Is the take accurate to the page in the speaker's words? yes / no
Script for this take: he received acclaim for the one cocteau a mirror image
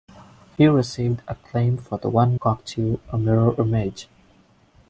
yes